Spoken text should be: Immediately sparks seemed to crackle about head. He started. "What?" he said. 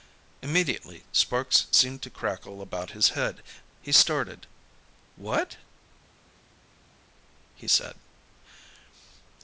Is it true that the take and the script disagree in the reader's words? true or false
true